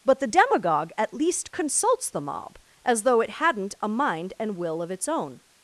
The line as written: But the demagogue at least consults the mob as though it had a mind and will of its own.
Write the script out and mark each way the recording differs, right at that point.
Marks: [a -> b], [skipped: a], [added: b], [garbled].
But the demagogue at least consults the mob as though it [had -> hadn't] a mind and will of its own.